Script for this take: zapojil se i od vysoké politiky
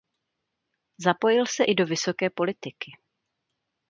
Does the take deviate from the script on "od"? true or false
true